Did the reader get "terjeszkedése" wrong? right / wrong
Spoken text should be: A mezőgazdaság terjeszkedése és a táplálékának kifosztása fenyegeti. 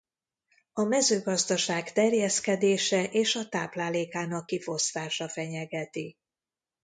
right